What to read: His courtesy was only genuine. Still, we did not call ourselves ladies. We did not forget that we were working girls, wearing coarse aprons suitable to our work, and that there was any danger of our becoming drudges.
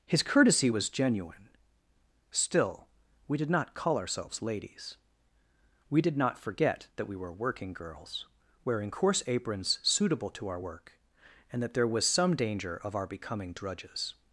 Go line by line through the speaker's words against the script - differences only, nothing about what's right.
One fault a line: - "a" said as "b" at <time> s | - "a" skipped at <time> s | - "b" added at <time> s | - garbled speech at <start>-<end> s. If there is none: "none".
- "only" skipped at 0.9 s
- "any" said as "some" at 12.1 s